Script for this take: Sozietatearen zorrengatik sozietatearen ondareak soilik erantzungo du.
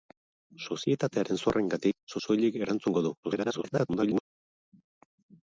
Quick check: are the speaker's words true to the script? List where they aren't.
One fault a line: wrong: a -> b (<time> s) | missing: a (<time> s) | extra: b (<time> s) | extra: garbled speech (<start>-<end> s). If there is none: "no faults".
missing: sozietatearen ondareak (2.2 s)
extra: garbled speech (3.2-4.2 s)